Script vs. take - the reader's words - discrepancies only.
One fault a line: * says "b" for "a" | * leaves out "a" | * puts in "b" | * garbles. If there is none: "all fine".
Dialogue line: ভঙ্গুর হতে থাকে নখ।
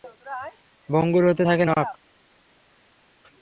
all fine